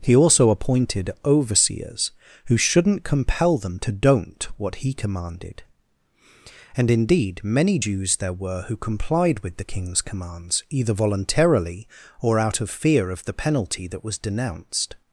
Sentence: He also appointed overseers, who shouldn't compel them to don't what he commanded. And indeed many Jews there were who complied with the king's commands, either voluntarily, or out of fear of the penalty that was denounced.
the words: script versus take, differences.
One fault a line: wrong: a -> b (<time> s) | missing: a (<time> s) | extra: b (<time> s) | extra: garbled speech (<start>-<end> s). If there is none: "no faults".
no faults